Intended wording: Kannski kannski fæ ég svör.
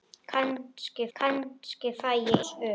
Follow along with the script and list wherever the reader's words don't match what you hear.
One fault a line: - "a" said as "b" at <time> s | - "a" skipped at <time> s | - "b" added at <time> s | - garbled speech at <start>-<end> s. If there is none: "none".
none